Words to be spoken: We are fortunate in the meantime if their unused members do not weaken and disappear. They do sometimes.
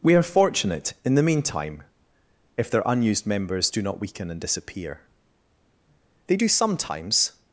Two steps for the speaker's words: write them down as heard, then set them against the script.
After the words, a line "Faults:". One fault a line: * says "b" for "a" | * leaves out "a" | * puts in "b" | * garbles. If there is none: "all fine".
We are fortunate in the meantime if their unused members do not weaken and disappear. They do sometimes.
Faults:
all fine